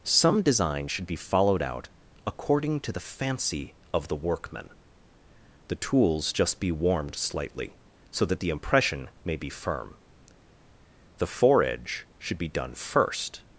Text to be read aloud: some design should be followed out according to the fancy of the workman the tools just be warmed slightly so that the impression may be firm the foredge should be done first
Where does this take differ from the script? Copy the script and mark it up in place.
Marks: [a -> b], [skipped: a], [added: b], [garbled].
some design should be followed out according to the fancy of the workman the tools just be warmed slightly so that the impression may be firm the foredge should be done first